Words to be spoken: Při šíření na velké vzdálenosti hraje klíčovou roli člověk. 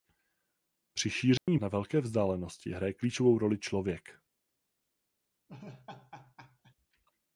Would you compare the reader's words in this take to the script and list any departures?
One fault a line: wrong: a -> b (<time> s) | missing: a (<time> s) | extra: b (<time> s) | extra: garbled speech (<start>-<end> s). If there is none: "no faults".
no faults